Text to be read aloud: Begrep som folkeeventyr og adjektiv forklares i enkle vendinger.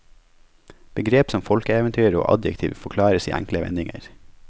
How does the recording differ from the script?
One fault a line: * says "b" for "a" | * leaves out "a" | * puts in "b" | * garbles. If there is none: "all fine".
all fine